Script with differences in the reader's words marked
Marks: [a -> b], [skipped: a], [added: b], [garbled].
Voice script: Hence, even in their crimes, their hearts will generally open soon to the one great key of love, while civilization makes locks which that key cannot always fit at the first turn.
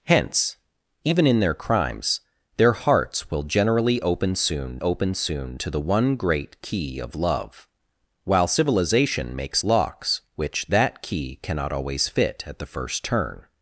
Hence, even in their crimes, their hearts will generally open soon [added: open soon] to the one great key of love, while civilization makes locks which that key cannot always fit at the first turn.